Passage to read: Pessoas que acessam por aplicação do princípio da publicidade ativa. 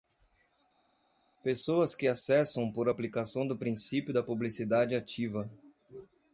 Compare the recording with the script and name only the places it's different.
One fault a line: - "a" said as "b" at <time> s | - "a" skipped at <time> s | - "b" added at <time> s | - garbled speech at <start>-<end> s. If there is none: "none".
none